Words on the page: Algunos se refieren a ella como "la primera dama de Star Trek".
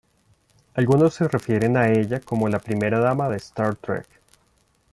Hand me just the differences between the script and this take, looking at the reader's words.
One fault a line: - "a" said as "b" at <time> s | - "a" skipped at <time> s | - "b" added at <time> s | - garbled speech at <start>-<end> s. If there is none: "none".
none